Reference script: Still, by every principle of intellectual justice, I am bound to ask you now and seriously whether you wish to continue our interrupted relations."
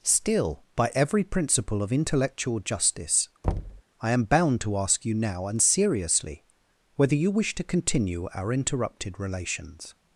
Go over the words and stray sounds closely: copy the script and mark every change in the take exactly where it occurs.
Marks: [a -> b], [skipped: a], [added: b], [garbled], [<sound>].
Still, by every principle of intellectual justice, [thud] I am bound to ask you now and seriously whether you wish to continue our interrupted relations."